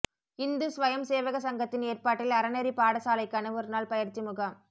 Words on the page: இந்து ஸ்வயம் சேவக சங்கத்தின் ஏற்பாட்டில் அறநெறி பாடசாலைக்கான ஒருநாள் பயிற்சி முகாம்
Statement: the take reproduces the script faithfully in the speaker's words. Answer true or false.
true